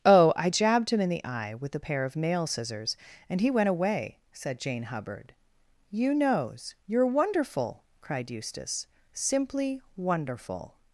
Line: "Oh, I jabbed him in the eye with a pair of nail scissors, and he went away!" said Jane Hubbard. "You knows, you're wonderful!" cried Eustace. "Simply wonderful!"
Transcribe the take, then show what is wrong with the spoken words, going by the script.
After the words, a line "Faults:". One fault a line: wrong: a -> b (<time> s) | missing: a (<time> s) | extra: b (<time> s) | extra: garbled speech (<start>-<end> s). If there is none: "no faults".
"Oh, I jabbed him in the eye with a pair of nail scissors, and he went away!" said Jane Hubbard. "You knows, you're wonderful!" cried Eustace. "Simply wonderful!"
Faults:
no faults